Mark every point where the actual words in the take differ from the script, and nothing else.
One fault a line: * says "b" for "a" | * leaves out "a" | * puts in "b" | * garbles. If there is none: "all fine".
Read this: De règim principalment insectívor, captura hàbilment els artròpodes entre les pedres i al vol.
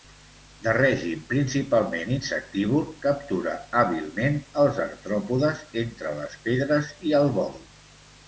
all fine